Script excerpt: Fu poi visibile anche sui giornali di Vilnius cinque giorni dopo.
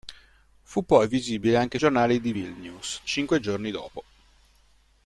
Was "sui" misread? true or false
true